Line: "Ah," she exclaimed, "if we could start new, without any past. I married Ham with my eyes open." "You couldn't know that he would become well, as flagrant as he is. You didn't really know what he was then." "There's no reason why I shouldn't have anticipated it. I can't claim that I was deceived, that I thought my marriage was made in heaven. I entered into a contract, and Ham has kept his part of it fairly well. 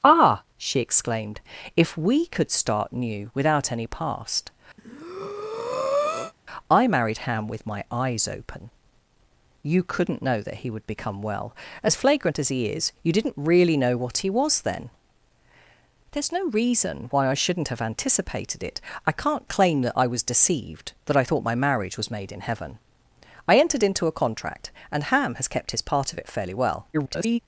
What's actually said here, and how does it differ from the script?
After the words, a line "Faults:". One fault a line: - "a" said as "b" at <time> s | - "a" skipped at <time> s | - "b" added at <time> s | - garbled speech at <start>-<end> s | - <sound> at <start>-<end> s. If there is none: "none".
"Ah," she exclaimed, "if we could start new, without any past. I married Ham with my eyes open." "You couldn't know that he would become well, as flagrant as he is. You didn't really know what he was then." "There's no reason why I shouldn't have anticipated it. I can't claim that I was deceived, that I thought my marriage was made in heaven. I entered into a contract, and Ham has kept his part of it fairly well. [garbled]
Faults:
- breath at 4.8-6.3 s
- garbled speech at 26.9-27.4 s